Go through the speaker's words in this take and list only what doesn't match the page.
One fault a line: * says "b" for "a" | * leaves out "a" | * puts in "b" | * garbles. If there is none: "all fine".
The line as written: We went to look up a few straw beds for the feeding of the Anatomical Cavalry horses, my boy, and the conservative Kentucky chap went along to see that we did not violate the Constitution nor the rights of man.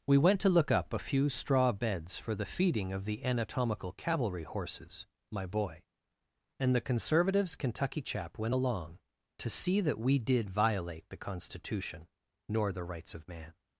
* says "conservatives" for "conservative"
* leaves out "not"